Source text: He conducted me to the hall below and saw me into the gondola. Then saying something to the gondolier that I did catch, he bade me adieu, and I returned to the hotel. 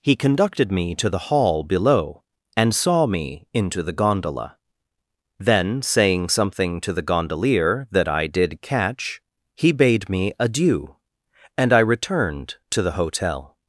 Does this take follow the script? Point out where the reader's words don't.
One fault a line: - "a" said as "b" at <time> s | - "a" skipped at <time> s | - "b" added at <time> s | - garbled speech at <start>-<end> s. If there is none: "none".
none